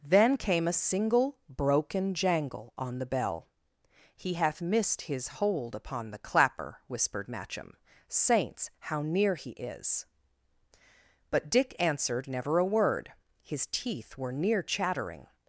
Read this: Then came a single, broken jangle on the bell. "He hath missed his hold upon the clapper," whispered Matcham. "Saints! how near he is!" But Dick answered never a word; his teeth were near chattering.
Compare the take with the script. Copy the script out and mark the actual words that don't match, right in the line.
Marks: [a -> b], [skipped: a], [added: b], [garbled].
Then came a single, broken jangle on the bell. "He hath missed his hold upon the clapper," whispered Matcham. "Saints! how near he is!" But Dick answered never a word; his teeth were near chattering.